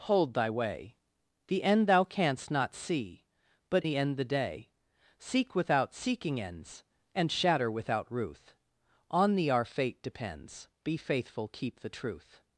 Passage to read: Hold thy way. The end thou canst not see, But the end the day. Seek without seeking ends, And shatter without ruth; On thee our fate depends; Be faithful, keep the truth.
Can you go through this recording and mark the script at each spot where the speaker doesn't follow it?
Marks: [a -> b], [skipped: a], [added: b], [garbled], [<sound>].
Hold thy way. The end thou canst not see, But the end the day. Seek without seeking ends, And shatter without ruth; On thee our fate depends; Be faithful, keep the truth.